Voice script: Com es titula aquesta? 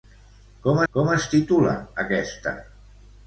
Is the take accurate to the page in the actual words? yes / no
no